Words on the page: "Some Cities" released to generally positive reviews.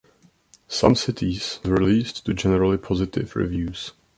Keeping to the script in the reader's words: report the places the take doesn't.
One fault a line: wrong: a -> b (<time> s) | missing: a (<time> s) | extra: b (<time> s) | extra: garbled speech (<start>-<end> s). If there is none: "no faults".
no faults